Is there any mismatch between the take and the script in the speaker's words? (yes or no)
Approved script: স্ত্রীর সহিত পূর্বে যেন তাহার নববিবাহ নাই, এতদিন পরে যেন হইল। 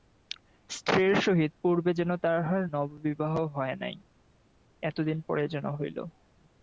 yes